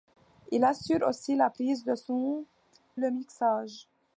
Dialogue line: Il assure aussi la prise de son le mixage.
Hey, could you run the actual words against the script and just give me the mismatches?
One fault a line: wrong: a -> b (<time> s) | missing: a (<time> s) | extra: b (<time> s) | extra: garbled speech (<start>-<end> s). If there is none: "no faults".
no faults